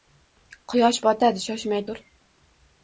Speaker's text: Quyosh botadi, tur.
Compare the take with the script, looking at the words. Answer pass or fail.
fail